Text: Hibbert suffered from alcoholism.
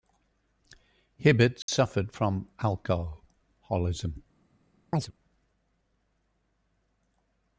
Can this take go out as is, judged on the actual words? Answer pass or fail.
pass